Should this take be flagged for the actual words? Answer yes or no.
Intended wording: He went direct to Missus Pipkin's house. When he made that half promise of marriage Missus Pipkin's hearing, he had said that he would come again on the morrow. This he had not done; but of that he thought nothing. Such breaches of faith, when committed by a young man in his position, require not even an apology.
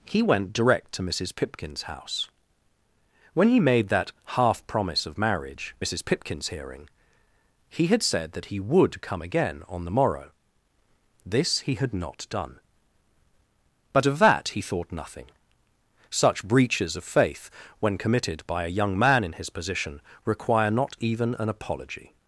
no